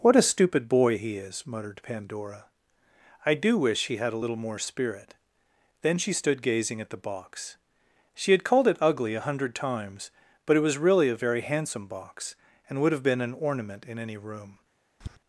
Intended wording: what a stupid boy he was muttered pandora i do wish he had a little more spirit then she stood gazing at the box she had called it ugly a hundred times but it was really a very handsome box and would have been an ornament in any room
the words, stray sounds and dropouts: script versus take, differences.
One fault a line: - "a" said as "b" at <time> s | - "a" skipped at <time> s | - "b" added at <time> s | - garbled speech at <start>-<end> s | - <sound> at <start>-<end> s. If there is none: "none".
- "was" said as "is" at 1.2 s
- tap at 15.0-15.2 s